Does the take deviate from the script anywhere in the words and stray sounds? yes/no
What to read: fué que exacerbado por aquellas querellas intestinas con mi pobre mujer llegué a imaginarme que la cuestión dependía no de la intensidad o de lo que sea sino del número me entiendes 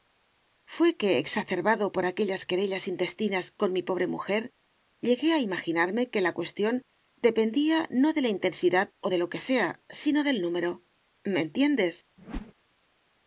yes